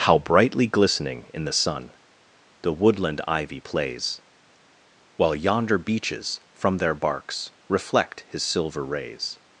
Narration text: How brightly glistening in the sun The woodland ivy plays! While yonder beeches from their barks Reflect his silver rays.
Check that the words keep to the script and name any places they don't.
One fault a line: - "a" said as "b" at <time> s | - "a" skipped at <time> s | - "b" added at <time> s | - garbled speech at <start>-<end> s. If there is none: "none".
none